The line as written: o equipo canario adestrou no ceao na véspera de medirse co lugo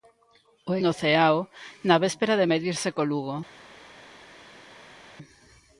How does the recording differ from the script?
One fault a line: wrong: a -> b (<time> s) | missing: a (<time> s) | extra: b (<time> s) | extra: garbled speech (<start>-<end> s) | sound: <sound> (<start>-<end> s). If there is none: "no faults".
missing: equipo canario adestrou (0.7 s)